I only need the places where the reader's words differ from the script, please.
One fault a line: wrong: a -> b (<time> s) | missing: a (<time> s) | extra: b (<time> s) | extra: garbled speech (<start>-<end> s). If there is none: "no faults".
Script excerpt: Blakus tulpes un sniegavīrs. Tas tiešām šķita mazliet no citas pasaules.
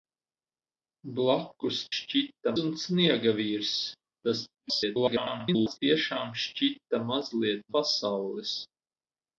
wrong: tulpes -> šķita (2.0 s)
extra: garbled speech (4.5-5.8 s)
missing: no citas (7.6 s)